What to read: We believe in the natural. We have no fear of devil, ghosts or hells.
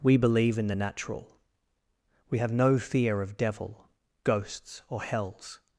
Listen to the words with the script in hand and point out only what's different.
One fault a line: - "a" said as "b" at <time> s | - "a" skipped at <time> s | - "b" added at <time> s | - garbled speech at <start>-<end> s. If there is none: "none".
none